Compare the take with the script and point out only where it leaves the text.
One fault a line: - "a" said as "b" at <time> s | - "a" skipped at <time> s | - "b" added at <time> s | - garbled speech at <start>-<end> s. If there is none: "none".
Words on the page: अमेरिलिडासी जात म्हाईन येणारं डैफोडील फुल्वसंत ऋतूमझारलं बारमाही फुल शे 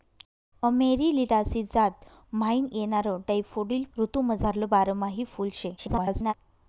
- "फुल्वसंत" skipped at 3.8 s
- garbled speech at 5.8-6.3 s